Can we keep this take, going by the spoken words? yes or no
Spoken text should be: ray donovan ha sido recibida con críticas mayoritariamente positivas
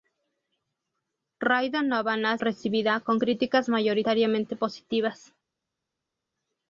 no